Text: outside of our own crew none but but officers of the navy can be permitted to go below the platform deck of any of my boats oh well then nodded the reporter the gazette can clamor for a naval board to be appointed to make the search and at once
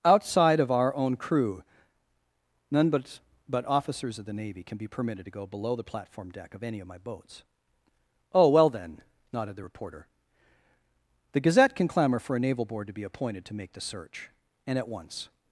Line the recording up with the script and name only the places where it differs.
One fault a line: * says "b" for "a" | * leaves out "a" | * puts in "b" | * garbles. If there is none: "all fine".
all fine